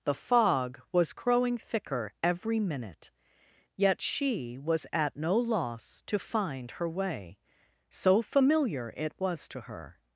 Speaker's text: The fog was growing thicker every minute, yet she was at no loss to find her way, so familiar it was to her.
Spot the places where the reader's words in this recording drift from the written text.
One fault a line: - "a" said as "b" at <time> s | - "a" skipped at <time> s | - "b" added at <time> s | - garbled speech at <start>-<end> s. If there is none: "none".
none